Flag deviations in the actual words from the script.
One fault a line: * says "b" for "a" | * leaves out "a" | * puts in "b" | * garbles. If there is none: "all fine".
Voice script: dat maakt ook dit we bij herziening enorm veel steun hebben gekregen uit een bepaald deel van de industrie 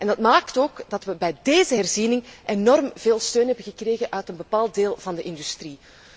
* says "dat" for "dit"
* puts in "deze"